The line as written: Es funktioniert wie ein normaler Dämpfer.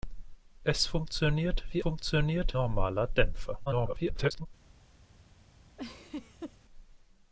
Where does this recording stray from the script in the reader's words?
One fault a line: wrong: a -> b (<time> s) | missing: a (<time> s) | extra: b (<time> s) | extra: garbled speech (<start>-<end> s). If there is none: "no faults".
wrong: ein -> funktioniert (1.8 s)
extra: garbled speech (3.7-4.5 s)